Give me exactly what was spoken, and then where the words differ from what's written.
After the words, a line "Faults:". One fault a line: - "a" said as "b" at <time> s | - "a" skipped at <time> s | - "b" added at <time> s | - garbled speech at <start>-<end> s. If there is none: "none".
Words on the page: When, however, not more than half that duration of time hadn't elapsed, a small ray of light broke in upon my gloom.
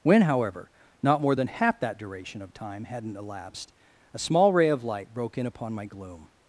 When, however, not more than half that duration of time hadn't elapsed, a small ray of light broke in upon my gloom.
Faults:
none